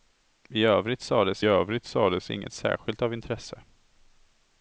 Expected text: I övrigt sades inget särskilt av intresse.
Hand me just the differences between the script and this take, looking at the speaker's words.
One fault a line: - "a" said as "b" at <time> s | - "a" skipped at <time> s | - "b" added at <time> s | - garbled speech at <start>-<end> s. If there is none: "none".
- "övrigt sades" added at 1.4 s